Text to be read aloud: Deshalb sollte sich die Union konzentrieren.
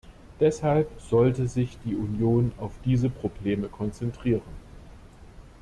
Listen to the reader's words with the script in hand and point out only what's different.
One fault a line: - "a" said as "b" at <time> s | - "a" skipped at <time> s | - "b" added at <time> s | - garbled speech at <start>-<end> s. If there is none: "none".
- "auf diese Probleme" added at 2.6 s